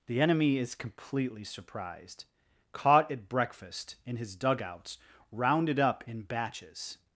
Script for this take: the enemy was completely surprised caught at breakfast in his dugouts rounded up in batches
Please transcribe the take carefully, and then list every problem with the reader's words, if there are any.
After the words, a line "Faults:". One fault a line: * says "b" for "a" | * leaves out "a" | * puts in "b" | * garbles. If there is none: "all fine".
the enemy is completely surprised caught at breakfast in his dugouts rounded up in batches
Faults:
* says "is" for "was"